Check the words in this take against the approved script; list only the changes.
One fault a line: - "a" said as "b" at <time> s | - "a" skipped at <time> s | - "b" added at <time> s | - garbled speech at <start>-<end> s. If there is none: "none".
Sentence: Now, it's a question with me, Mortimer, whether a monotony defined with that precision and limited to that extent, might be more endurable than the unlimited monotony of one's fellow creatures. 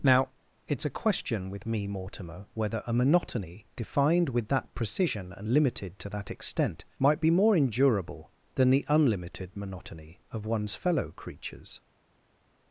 none